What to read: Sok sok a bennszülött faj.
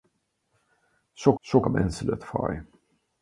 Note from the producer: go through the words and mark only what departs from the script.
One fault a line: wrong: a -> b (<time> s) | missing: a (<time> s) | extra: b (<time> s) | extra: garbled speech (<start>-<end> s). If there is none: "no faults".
no faults